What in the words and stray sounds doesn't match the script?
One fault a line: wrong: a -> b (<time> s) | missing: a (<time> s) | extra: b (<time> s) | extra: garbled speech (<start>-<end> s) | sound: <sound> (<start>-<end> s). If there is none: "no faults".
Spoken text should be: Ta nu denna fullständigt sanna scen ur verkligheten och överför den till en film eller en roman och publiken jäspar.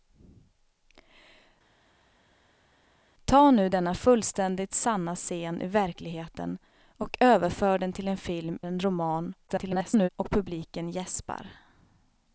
missing: eller (8.6 s)
extra: garbled speech (9.5-10.1 s)